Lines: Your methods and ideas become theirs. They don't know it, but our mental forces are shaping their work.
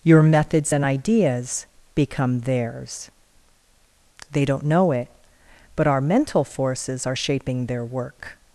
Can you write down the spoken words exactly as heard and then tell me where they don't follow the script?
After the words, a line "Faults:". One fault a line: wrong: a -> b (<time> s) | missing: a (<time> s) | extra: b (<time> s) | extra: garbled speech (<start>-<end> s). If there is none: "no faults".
Your methods and ideas become theirs. They don't know it, but our mental forces are shaping their work.
Faults:
no faults